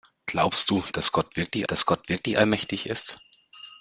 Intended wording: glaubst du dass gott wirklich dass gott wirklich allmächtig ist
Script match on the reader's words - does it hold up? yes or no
yes